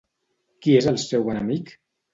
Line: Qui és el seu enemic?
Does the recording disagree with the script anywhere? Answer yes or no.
no